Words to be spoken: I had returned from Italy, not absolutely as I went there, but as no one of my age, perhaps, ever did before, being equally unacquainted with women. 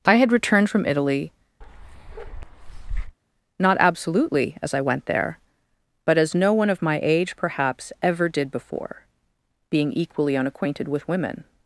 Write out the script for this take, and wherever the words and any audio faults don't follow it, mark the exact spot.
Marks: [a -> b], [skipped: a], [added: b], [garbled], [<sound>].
I had returned from Italy, [bark] not absolutely as I went there, but as no one of my age, perhaps, ever did before, being equally unacquainted with women.